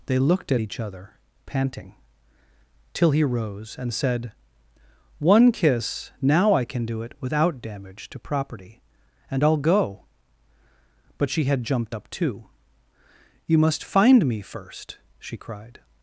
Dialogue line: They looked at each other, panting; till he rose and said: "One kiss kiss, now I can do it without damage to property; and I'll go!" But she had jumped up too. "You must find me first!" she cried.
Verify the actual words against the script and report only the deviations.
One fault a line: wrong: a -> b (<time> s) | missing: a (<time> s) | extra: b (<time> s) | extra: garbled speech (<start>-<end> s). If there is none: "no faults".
missing: kiss (6.1 s)